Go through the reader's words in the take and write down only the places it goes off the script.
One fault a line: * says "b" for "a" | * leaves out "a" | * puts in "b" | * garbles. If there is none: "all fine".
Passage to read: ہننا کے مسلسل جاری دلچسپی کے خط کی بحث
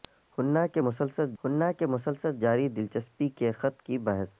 * puts in "ہننا کے مسلسل"